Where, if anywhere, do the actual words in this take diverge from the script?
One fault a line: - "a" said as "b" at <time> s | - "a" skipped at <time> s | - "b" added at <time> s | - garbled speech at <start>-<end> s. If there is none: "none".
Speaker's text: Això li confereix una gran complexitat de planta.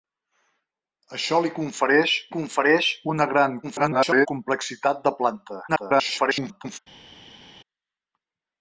- "confereix" added at 2.3 s
- garbled speech at 3.6-4.3 s
- garbled speech at 5.7-6.8 s